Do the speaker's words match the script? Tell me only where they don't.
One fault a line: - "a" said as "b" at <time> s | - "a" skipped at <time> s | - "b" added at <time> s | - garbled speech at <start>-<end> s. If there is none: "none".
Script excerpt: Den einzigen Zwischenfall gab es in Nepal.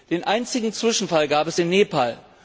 none